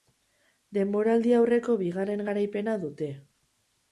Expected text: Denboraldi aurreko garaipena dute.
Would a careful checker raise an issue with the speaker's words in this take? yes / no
yes